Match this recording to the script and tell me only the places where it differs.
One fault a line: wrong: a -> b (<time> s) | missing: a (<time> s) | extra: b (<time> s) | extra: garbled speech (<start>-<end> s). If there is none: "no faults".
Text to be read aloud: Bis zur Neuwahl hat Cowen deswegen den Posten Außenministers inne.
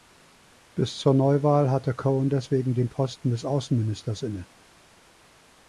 wrong: hat -> hatte (1.7 s)
extra: des (3.3 s)